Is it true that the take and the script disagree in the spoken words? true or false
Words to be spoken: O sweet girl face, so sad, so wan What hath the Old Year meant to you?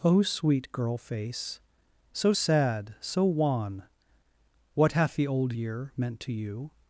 false